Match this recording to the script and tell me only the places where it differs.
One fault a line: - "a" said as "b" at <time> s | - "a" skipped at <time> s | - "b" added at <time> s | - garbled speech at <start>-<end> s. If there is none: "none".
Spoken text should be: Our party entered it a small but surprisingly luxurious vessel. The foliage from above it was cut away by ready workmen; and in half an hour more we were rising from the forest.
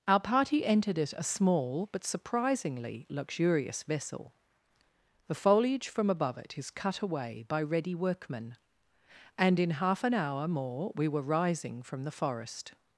- "was" said as "is" at 6.6 s